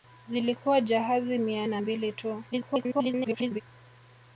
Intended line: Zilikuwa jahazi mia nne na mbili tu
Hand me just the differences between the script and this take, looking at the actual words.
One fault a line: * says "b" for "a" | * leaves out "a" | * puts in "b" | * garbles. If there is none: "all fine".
* leaves out "nne"
* garbles